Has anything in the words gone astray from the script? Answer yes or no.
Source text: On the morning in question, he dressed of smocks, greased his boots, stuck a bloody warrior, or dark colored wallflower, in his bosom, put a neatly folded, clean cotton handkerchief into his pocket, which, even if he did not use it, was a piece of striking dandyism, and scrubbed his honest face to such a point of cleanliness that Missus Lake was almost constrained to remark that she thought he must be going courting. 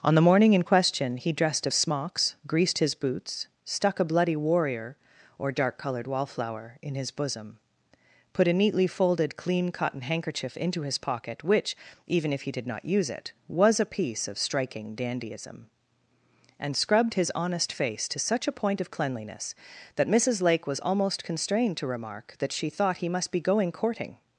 no